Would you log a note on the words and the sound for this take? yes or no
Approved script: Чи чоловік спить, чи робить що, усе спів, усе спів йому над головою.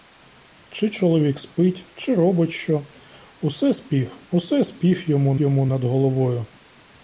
yes